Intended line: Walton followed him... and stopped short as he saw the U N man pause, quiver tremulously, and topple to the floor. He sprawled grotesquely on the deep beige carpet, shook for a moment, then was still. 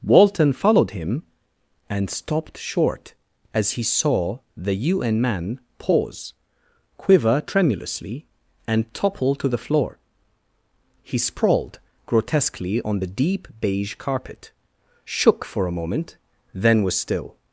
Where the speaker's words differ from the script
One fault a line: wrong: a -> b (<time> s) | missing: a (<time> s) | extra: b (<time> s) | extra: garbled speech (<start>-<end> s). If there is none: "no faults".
no faults